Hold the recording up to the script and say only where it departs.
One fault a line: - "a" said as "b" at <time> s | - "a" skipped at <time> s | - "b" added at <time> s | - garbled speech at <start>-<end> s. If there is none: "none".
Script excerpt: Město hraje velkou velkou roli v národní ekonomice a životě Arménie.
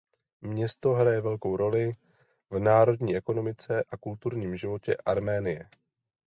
- "velkou" skipped at 1.6 s
- "kulturním" added at 4.0 s